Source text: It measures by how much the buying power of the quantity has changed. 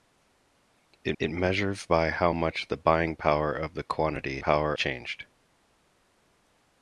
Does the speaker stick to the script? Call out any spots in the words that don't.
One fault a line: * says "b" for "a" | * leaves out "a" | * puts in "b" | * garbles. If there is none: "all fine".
* puts in "it"
* says "power" for "has"